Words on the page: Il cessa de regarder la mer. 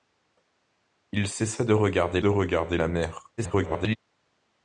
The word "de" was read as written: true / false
true